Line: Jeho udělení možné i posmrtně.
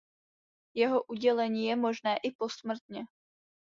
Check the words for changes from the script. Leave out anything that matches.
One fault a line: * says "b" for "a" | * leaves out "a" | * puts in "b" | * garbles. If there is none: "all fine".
* puts in "je"